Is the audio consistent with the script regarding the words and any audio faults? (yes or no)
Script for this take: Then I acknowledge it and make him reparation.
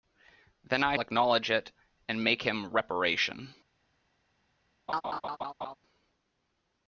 no